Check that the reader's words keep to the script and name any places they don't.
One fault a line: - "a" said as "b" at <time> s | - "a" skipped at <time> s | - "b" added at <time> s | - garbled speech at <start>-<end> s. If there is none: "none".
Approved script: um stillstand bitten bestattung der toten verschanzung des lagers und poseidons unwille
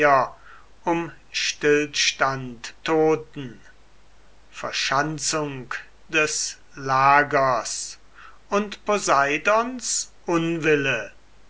- "bitten bestattung der" skipped at 2.7 s